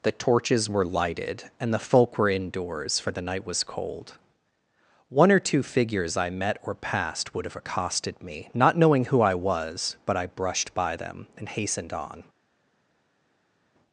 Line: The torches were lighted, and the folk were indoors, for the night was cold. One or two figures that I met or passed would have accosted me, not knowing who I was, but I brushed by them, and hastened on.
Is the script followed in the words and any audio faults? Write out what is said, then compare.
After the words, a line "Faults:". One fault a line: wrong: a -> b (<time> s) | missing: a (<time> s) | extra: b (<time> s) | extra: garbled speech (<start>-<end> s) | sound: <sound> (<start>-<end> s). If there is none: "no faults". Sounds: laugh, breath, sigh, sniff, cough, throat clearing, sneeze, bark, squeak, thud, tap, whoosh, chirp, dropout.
The torches were lighted, and the folk were indoors, for the night was cold. One or two figures I met or passed would have accosted me, not knowing who I was, but I brushed by them, and hastened on.
Faults:
missing: that (6.2 s)